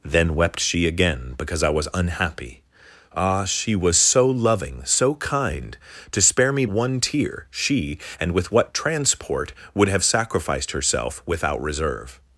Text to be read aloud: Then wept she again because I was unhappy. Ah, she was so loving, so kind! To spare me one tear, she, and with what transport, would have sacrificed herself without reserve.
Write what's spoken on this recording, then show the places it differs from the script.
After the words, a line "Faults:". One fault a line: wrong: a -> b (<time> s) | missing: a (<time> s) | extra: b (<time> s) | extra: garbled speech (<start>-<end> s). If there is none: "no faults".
Then wept she again because I was unhappy. Ah, she was so loving, so kind! To spare me one tear, she, and with what transport, would have sacrificed herself without reserve.
Faults:
no faults